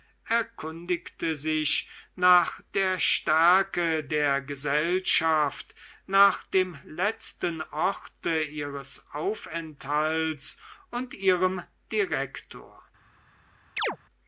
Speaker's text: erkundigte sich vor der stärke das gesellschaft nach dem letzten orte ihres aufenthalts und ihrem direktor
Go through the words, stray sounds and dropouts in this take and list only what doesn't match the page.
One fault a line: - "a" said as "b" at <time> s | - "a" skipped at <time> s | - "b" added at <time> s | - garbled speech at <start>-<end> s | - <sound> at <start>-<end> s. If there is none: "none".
- "vor" said as "nach" at 2.1 s
- "das" said as "der" at 4.0 s
- chirp at 13.8-14.0 s